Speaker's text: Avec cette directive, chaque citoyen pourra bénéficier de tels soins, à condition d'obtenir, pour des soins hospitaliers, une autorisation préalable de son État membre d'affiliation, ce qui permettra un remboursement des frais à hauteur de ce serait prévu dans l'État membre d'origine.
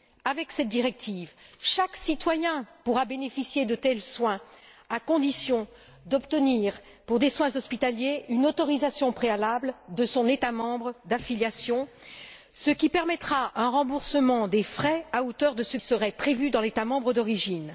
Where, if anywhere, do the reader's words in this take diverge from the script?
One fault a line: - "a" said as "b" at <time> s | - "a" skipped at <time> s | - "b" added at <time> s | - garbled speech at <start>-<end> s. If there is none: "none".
none